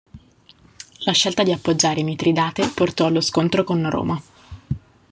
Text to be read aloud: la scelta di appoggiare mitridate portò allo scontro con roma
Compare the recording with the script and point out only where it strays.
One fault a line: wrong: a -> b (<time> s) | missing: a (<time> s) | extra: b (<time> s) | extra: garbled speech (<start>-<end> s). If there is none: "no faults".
no faults